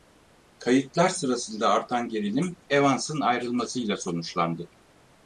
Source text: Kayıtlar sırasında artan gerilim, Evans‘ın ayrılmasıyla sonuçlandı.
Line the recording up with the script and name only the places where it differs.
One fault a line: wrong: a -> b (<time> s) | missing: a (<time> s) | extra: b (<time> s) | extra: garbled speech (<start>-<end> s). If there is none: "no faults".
no faults